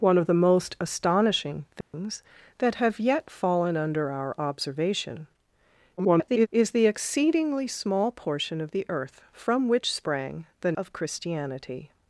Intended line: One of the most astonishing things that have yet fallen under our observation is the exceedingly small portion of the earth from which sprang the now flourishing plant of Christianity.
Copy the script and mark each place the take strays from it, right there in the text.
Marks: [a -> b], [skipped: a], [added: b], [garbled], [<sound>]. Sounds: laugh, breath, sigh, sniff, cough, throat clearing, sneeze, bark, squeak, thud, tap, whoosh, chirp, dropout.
One of the most astonishing things [dropout] that have yet fallen under our observation [garbled] is the exceedingly small portion of the earth from which sprang the [skipped: now flourishing plant] of Christianity.